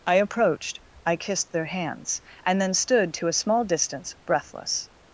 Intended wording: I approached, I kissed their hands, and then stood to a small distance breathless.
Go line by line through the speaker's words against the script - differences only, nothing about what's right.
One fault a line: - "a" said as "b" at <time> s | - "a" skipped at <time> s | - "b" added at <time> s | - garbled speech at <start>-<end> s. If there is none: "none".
none